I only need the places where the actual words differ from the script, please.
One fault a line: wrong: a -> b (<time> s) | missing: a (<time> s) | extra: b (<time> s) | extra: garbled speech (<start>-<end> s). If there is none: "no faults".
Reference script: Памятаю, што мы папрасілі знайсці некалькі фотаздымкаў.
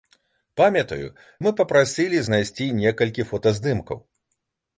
missing: што (1.1 s)